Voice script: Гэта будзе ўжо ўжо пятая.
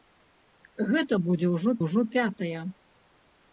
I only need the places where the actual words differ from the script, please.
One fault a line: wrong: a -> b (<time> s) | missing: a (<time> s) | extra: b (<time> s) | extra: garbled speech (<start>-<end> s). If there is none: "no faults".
no faults